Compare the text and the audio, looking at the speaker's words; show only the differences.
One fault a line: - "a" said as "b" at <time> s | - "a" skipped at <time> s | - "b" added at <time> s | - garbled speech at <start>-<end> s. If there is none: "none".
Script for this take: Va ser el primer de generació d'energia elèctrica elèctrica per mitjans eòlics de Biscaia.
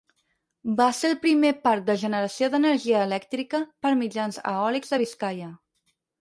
- "parc" added at 1.7 s
- "elèctrica" skipped at 3.6 s